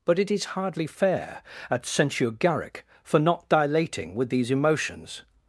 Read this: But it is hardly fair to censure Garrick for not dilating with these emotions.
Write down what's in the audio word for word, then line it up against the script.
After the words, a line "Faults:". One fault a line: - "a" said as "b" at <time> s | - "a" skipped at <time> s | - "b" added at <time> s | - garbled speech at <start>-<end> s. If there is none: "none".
But it is hardly fair at censure Garrick for not dilating with these emotions.
Faults:
- "to" said as "at" at 1.7 s